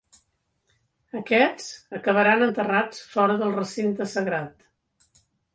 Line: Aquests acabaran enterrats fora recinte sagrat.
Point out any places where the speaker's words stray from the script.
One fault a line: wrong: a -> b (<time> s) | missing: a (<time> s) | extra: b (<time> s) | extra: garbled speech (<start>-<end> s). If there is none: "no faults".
extra: del (3.4 s)